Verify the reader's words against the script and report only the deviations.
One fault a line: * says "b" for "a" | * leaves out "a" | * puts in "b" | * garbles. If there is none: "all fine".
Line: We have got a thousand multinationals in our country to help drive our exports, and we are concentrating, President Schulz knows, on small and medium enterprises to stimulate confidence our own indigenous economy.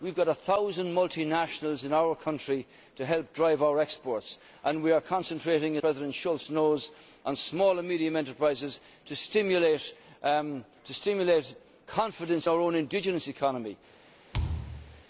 all fine